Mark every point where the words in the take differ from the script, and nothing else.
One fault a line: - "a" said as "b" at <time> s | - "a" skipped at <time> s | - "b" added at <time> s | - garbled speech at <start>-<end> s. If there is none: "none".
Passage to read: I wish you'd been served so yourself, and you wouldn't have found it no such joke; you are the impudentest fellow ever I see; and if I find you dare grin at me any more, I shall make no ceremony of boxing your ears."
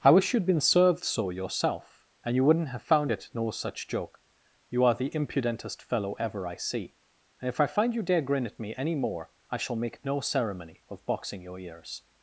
none